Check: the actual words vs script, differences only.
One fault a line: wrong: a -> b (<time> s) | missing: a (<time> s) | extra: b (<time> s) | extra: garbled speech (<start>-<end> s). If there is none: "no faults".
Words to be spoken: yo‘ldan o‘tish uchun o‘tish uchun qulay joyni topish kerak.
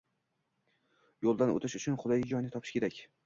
missing: o‘tish uchun (2.0 s)